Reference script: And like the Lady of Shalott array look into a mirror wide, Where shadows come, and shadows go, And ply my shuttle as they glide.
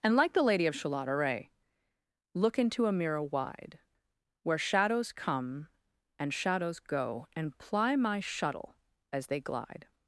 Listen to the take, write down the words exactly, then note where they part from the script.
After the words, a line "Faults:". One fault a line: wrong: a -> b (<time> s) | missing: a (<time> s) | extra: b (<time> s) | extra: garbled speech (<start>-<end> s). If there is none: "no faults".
And like the Lady of Shalott array look into a mirror wide, Where shadows come, and shadows go, And ply my shuttle as they glide.
Faults:
no faults